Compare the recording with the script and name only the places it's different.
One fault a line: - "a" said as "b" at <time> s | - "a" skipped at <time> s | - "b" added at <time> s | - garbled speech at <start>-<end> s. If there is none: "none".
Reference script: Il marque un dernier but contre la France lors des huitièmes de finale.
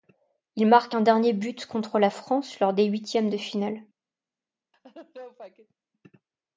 none